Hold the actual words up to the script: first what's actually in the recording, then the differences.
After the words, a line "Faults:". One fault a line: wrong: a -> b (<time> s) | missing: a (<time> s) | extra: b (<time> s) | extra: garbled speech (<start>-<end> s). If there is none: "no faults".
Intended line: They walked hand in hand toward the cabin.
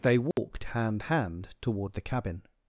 They walked hand hand toward the cabin.
Faults:
missing: in (1.0 s)